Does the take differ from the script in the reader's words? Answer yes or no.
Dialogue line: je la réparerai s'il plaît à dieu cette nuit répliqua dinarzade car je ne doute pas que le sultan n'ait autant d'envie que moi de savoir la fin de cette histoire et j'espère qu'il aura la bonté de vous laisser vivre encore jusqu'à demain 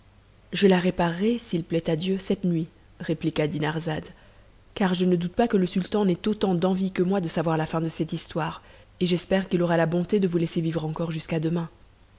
no